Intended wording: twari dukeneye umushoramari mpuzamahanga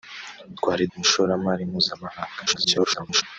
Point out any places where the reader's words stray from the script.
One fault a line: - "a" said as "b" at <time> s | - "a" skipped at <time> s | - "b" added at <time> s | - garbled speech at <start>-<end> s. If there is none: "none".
- "dukeneye" skipped at 0.8 s
- garbled speech at 2.5-3.2 s